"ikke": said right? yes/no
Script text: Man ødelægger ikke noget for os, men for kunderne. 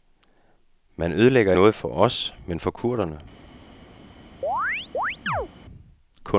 no